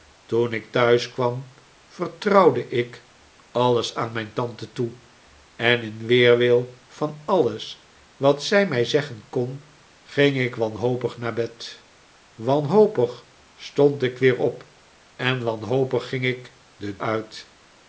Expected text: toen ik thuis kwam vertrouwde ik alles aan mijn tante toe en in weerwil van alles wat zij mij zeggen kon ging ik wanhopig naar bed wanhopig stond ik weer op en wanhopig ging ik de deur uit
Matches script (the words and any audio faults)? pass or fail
fail